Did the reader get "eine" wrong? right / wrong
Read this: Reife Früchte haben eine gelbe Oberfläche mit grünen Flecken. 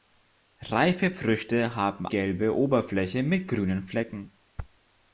wrong